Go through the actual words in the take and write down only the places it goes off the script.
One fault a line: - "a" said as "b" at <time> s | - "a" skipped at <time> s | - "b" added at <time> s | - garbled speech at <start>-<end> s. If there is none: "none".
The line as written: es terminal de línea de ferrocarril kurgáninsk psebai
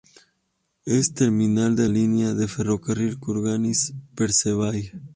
none